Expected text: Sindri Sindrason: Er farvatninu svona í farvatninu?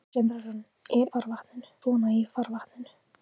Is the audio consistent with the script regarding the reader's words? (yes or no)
yes